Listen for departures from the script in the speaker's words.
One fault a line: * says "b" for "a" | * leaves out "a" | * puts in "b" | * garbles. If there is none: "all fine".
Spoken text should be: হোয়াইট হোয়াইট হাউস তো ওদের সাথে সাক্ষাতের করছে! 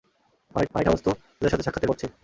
all fine